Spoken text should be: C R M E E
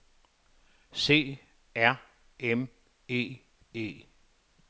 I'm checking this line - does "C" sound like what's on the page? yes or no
yes